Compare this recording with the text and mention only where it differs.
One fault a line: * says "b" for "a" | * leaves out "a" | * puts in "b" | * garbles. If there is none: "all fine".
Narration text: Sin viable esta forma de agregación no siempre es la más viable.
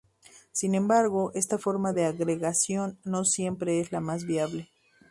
* says "embargo" for "viable"